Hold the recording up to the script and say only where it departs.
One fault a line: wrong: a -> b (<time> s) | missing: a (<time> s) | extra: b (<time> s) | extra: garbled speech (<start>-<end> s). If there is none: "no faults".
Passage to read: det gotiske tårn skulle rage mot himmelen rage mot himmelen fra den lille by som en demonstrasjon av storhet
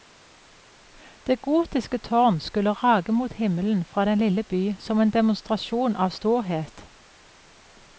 missing: rage mot himmelen (3.9 s)